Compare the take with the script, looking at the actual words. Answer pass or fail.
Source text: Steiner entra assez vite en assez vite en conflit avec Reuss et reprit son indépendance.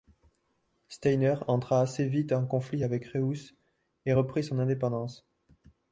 fail